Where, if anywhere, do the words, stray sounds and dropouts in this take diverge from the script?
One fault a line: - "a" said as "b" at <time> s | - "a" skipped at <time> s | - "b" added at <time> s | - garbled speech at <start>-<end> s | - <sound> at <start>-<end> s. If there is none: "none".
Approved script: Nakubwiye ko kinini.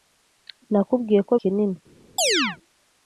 - chirp at 2.2-2.6 s